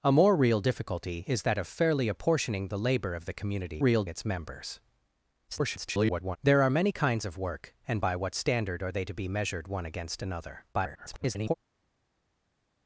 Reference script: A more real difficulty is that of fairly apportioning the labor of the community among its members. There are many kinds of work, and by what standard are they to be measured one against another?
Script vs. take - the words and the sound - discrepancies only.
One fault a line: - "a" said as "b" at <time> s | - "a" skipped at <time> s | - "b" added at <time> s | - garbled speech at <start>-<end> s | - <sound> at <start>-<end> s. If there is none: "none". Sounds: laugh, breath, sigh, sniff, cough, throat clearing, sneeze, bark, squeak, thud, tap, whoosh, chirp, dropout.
- "among" said as "real" at 3.8 s
- garbled speech at 5.5-6.4 s
- garbled speech at 10.7-11.5 s